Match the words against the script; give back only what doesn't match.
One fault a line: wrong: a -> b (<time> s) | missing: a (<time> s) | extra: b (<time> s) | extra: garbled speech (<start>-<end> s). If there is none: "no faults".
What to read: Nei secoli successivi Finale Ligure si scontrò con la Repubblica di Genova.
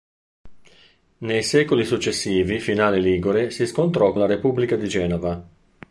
missing: con (4.1 s)